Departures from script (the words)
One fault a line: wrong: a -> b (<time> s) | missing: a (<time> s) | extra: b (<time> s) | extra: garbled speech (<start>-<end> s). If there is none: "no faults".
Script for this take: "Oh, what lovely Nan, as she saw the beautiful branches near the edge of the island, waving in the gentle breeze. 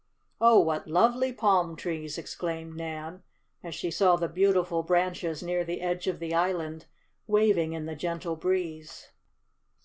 extra: palm trees exclaimed (1.3 s)